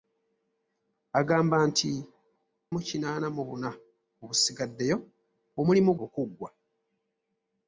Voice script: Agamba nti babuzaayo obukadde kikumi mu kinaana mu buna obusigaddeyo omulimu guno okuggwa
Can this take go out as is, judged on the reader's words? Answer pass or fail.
fail